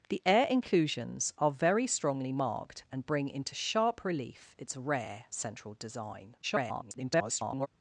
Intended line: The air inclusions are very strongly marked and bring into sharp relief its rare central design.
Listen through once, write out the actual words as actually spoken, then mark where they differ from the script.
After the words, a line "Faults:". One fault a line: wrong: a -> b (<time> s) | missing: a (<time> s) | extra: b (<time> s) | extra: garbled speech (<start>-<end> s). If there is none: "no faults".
The air inclusions are very strongly marked and bring into sharp relief its rare central design. [garbled]
Faults:
extra: garbled speech (6.4-7.7 s)